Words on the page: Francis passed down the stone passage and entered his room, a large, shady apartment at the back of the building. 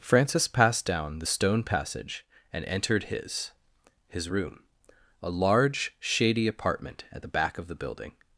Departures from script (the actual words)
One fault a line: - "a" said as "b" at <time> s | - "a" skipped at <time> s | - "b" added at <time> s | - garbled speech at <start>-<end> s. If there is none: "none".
- "his" added at 4.1 s